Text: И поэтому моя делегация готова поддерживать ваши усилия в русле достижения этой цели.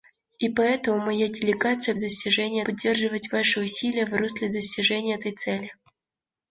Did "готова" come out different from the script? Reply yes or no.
yes